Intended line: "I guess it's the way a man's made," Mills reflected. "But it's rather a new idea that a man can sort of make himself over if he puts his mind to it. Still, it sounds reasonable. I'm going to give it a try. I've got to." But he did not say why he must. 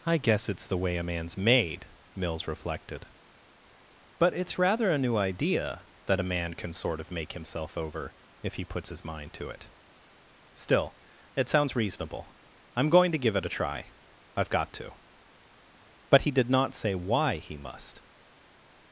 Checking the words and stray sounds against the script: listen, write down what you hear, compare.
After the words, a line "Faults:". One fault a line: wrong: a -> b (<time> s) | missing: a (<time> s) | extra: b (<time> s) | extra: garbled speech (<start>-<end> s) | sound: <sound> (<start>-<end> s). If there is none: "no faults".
"I guess it's the way a man's made," Mills reflected. "But it's rather a new idea that a man can sort of make himself over if he puts his mind to it. Still, it sounds reasonable. I'm going to give it a try. I've got to." But he did not say why he must.
Faults:
no faults